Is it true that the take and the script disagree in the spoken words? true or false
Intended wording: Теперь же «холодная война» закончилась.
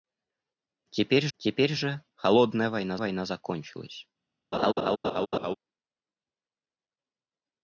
true